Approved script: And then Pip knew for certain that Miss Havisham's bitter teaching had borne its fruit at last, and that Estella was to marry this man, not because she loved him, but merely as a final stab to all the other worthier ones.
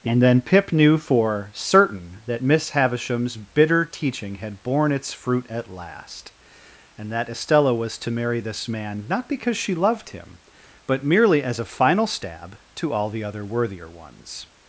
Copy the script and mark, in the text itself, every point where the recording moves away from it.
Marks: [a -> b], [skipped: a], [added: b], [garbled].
And then Pip knew for certain that Miss Havisham's bitter teaching had borne its fruit at last, and that Estella was to marry this man, not because she loved him, but merely as a final stab to all the other worthier ones.